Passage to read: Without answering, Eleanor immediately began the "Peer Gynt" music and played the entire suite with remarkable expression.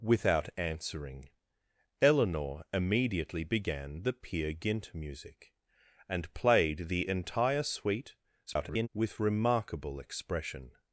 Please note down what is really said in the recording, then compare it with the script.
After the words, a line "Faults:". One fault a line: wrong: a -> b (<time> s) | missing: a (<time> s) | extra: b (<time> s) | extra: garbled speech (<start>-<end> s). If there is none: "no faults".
Without answering, Eleanor immediately began the "Peer Gynt" music and played the entire suite [garbled] with remarkable expression.
Faults:
extra: garbled speech (8.5-8.9 s)